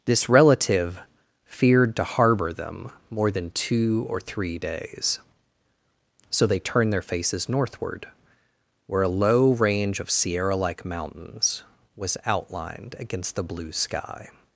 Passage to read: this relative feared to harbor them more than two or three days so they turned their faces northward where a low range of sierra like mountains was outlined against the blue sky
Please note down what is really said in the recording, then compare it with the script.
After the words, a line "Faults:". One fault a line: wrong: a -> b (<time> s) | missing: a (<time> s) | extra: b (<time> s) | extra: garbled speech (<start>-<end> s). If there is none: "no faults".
this relative feared to harbor them more than two or three days so they turned their faces northward where a low range of sierra like mountains was outlined against the blue sky
Faults:
no faults